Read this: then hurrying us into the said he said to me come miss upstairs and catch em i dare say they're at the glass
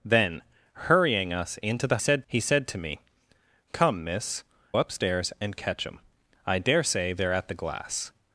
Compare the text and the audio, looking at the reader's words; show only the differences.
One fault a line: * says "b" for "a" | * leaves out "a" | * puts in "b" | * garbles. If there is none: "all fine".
all fine